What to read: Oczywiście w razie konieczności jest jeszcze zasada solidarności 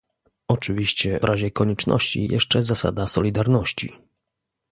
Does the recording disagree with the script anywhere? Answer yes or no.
yes